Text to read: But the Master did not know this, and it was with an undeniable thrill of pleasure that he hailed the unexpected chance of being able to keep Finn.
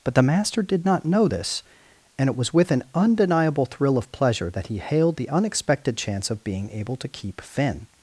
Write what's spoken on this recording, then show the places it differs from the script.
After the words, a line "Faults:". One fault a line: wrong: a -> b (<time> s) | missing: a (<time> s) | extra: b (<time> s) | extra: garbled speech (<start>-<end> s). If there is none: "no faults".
But the Master did not know this, and it was with an undeniable thrill of pleasure that he hailed the unexpected chance of being able to keep Finn.
Faults:
no faults